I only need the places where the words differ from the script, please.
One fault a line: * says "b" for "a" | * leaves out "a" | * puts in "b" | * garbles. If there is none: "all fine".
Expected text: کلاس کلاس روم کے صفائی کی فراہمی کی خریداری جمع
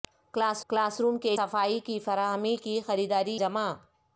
all fine